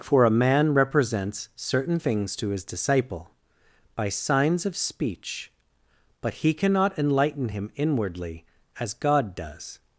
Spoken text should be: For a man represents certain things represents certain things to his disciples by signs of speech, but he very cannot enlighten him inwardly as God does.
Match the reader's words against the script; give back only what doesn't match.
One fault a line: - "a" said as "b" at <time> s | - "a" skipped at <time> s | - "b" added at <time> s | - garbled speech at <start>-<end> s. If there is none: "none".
- "represents certain things" skipped at 2.4 s
- "disciples" said as "disciple" at 2.6 s
- "very" skipped at 6.5 s